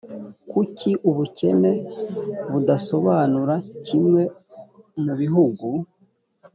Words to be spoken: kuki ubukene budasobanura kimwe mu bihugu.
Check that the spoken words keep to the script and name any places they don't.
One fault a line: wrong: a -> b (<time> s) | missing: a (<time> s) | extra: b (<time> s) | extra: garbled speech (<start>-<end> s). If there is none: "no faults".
no faults